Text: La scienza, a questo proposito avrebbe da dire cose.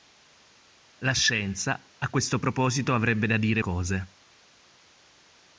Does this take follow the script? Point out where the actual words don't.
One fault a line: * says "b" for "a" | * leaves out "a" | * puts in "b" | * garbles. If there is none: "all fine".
all fine